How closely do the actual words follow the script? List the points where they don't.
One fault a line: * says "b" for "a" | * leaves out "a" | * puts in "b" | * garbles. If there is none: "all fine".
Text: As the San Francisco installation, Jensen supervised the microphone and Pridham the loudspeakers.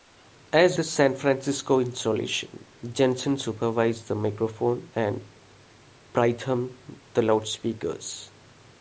all fine